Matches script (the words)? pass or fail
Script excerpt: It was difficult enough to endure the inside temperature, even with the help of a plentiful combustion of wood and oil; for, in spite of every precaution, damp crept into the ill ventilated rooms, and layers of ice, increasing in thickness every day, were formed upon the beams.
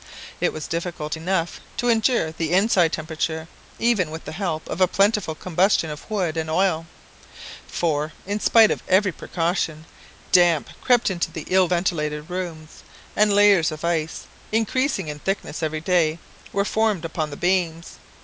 pass